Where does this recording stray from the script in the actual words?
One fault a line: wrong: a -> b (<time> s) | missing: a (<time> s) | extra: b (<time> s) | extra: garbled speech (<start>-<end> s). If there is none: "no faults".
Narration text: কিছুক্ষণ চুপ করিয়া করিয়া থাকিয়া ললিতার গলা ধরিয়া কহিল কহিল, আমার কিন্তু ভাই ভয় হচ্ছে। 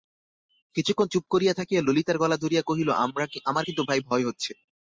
missing: করিয়া (1.5 s)
missing: কহিল (2.9 s)